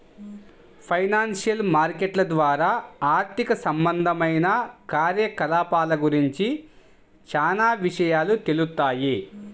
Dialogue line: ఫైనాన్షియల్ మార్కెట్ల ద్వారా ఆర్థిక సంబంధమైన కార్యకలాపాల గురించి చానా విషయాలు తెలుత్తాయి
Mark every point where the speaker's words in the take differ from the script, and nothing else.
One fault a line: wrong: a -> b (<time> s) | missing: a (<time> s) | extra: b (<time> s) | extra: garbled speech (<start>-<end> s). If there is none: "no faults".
no faults